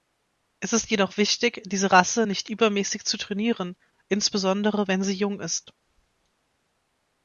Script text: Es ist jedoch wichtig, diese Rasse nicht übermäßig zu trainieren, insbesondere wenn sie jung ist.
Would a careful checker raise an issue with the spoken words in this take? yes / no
no